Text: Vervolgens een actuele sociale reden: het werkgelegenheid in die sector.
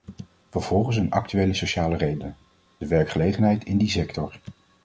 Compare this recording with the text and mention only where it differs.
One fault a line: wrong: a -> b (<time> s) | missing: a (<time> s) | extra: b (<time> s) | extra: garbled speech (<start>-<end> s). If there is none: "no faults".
wrong: het -> de (2.8 s)